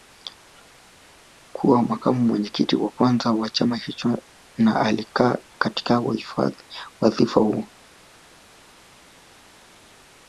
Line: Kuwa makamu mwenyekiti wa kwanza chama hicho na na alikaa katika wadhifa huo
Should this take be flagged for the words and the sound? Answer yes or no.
yes